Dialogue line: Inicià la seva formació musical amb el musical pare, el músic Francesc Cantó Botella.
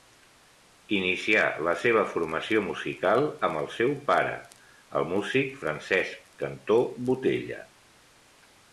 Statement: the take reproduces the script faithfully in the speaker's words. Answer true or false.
false